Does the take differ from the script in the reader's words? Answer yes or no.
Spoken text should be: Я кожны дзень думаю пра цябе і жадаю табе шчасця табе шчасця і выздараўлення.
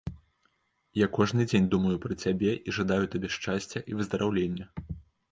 yes